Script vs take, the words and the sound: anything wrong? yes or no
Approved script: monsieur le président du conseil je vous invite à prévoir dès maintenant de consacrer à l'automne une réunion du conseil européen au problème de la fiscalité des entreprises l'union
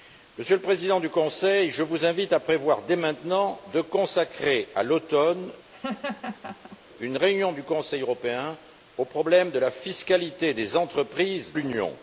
yes